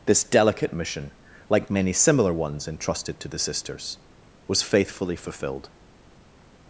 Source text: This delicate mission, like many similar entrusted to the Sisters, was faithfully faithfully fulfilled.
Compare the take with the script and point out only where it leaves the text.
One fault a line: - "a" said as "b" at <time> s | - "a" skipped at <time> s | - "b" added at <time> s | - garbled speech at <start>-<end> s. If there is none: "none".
- "ones" added at 2.3 s
- "faithfully" skipped at 5.2 s